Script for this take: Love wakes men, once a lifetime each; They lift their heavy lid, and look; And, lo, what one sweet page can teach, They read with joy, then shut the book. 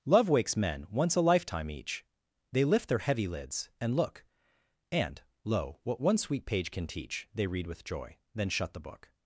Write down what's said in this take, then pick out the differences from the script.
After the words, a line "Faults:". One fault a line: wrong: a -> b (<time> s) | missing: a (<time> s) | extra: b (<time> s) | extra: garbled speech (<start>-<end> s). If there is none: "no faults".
Love wakes men, once a lifetime each; They lift their heavy lids, and look; And, lo, what one sweet page can teach, They read with joy, then shut the book.
Faults:
wrong: lid -> lids (3.3 s)